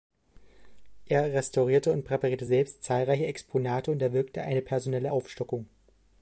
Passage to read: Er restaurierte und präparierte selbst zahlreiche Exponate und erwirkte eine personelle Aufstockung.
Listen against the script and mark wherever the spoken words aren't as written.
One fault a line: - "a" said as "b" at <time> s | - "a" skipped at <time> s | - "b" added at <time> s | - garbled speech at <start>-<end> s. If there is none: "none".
none